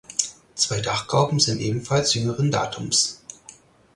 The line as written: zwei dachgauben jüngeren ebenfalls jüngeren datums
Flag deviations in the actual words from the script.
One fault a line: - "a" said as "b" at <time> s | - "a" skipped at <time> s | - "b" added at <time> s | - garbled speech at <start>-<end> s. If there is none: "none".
- "jüngeren" said as "sind" at 1.4 s